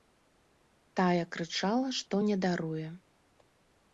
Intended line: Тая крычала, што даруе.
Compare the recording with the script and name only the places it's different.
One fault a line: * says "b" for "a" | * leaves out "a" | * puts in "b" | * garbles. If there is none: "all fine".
* puts in "не"